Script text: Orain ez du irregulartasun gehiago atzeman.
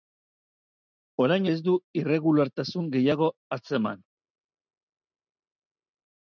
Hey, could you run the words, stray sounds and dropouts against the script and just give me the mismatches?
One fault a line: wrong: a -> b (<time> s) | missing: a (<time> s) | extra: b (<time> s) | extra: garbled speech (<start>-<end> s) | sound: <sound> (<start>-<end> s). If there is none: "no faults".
no faults